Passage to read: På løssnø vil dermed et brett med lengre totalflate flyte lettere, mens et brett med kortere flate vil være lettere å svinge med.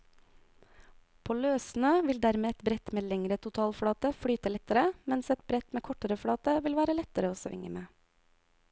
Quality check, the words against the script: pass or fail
pass